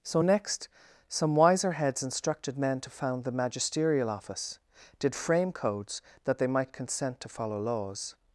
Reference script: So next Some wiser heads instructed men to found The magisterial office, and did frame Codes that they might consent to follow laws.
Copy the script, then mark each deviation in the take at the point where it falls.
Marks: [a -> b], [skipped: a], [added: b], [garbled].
So next Some wiser heads instructed men to found The magisterial office, [skipped: and] did frame Codes that they might consent to follow laws.